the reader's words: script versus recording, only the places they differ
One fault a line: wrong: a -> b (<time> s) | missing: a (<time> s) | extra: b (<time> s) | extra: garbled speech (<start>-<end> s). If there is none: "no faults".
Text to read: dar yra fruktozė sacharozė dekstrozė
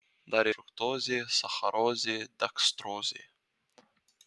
missing: yra (0.5 s)